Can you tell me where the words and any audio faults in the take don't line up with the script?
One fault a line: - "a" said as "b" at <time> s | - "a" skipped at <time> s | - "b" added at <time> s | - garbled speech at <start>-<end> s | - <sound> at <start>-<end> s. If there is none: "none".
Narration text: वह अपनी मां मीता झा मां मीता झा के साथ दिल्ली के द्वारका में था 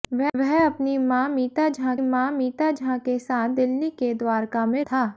none